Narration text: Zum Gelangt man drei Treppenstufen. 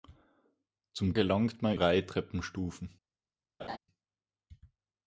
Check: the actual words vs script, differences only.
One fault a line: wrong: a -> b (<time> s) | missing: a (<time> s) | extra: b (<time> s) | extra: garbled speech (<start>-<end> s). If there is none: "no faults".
no faults